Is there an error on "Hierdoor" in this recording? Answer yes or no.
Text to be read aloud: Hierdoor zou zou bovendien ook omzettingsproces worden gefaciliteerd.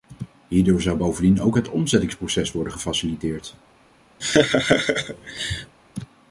no